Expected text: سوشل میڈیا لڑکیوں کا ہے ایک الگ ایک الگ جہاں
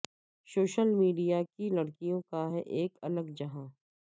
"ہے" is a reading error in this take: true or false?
false